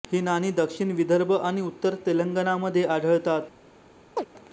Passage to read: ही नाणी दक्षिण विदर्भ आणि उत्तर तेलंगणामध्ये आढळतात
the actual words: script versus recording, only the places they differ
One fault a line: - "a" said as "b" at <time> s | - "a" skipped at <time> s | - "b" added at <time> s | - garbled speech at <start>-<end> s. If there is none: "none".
none